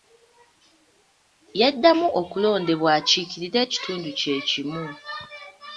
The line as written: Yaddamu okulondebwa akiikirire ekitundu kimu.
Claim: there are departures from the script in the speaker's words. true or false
true